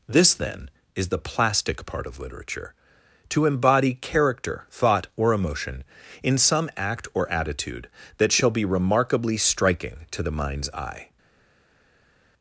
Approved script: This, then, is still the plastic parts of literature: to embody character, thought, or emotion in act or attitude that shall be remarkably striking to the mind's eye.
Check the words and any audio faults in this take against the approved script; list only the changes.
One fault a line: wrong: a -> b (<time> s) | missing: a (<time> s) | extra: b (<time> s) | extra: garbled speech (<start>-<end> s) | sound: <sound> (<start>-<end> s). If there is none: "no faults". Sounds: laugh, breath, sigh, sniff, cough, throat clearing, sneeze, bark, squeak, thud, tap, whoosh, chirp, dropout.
missing: still (1.1 s)
wrong: parts -> part (1.9 s)
extra: some (6.4 s)